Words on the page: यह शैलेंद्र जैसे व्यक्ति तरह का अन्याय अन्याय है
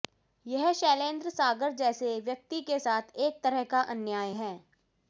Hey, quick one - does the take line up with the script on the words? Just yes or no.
no